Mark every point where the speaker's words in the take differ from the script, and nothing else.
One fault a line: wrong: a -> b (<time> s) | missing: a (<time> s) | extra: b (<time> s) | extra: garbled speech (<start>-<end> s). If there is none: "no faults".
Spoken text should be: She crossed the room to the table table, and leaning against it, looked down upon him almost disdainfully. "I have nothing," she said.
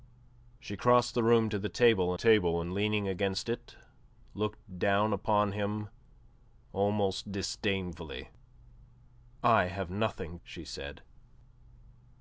no faults